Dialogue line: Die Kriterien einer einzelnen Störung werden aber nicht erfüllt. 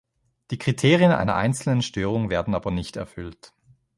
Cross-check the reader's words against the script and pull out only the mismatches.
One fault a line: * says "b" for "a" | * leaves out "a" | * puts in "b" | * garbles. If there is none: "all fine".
all fine